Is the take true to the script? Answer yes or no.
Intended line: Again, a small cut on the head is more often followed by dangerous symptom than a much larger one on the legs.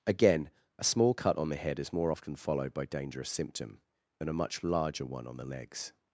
yes